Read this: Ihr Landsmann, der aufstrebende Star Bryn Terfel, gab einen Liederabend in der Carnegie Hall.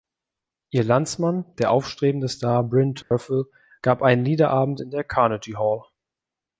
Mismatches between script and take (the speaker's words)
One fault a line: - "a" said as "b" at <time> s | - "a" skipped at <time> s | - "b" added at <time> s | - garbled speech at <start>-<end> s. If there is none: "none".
none